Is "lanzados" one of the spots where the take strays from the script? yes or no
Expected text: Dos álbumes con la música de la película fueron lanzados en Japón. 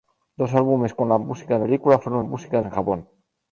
yes